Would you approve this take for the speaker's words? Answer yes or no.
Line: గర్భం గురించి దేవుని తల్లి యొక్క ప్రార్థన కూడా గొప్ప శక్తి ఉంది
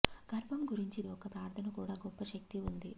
no